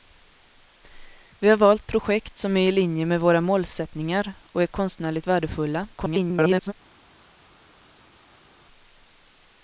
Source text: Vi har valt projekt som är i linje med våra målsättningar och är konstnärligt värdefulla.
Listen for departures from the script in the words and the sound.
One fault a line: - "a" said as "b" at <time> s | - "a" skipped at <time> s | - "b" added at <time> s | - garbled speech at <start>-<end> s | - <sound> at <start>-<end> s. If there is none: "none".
- garbled speech at 5.9-6.7 s